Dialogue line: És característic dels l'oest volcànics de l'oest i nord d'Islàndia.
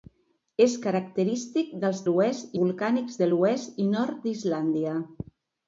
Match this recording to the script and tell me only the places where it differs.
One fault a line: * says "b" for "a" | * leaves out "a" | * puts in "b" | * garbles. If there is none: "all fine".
all fine